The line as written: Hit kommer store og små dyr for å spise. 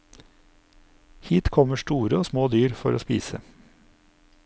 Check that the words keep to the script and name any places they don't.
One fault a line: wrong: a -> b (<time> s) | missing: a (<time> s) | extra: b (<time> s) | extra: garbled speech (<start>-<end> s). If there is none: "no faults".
no faults